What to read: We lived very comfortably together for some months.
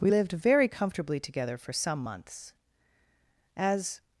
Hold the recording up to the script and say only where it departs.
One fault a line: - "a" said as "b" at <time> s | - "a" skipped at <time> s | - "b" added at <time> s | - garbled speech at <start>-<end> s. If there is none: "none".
- "As" added at 3.6 s